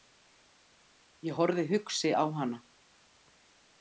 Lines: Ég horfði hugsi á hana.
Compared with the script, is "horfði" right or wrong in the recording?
right